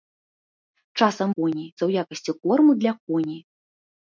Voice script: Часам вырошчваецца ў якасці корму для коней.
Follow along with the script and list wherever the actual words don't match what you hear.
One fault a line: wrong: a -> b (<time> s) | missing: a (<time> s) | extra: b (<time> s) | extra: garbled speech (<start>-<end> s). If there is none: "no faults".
wrong: вырошчваецца -> коней (1.3 s)